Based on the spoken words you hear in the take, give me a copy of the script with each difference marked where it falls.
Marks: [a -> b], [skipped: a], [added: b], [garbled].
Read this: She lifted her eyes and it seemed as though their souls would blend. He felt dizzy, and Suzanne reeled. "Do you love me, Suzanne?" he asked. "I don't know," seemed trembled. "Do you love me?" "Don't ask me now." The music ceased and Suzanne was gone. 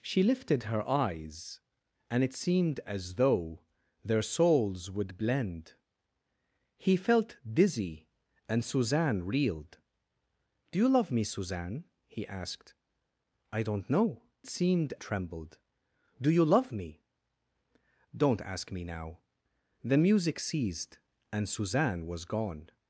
She lifted her eyes and it seemed as though their souls would blend. He felt dizzy, and Suzanne reeled. "Do you love me, Suzanne?" he asked. "I don't know," seemed trembled. "Do you love me?" "Don't ask me now." The music ceased and Suzanne was gone.